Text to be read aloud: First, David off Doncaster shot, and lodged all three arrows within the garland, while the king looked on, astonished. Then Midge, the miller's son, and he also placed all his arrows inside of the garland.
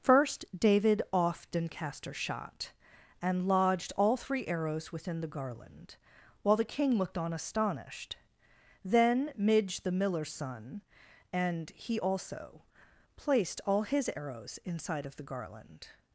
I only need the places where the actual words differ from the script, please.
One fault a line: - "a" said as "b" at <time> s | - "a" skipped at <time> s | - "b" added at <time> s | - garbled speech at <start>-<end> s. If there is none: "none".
none